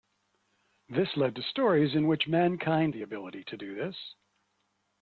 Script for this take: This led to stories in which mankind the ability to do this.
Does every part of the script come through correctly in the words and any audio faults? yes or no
yes